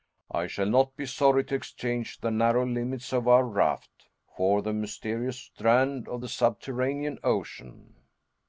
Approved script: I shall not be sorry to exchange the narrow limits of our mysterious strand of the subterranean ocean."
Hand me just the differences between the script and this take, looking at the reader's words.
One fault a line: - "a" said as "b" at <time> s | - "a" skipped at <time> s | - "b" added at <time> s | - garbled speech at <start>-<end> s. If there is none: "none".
- "raft for the" added at 3.5 s